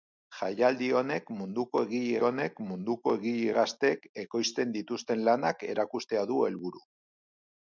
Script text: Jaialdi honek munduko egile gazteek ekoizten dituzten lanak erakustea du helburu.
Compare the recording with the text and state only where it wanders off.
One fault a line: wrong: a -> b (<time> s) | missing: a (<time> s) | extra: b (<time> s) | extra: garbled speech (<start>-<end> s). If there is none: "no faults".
extra: honek munduko egile (2.3 s)